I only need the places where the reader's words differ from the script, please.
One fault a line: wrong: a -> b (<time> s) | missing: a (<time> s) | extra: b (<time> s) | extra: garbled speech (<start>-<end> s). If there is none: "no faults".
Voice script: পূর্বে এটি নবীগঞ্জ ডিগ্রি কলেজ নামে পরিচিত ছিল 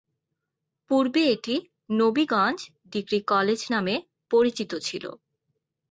no faults